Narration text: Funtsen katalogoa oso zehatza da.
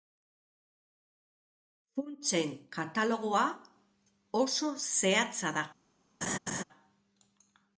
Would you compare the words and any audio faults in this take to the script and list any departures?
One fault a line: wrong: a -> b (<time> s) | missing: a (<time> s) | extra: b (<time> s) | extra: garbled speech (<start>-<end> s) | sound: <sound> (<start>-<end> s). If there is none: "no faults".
sound: laugh (6.2-6.6 s)